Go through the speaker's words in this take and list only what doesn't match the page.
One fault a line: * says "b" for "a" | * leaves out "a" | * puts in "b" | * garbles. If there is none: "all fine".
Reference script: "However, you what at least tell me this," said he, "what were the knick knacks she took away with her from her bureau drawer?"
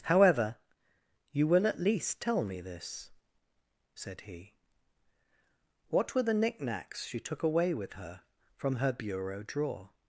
* says "will" for "what"